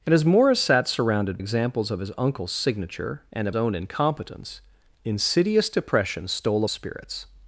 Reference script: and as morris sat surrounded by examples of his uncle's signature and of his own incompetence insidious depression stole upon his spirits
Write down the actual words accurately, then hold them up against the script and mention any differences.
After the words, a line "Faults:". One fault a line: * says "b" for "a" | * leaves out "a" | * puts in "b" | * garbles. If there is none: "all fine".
and as morris sat surrounded examples of his uncle's signature and of own incompetence insidious depression stole spirits
Faults:
* leaves out "by"
* leaves out "his"
* leaves out "upon his"